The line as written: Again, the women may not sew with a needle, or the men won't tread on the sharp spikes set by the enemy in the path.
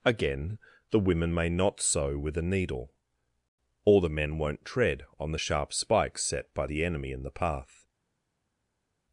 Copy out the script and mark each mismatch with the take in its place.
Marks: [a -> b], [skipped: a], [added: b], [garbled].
Again, the women may not sew with a needle, or the men won't tread on the sharp spikes set by the enemy in the path.